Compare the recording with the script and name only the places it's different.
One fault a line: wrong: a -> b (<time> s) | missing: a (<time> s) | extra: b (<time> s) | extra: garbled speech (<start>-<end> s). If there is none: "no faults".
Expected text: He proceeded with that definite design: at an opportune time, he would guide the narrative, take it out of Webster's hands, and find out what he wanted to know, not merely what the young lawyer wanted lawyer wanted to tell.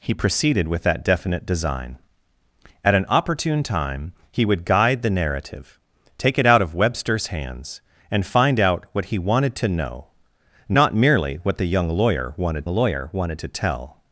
no faults